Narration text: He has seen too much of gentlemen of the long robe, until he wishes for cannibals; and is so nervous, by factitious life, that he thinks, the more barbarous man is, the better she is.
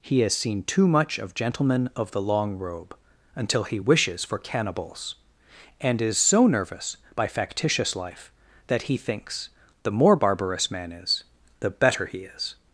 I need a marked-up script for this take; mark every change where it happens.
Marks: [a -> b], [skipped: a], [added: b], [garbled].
He has seen too much of gentlemen of the long robe, until he wishes for cannibals; and is so nervous, by factitious life, that he thinks, the more barbarous man is, the better [she -> he] is.